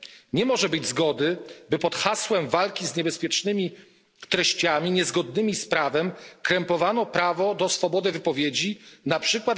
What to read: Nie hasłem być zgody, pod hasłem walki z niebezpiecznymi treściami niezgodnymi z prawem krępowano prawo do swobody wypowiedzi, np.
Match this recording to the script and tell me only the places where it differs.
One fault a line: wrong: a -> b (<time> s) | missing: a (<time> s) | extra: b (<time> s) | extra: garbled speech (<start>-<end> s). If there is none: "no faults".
wrong: hasłem -> może (0.5 s)
extra: by (1.7 s)